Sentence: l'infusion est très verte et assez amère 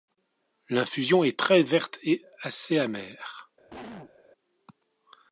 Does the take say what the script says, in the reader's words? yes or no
yes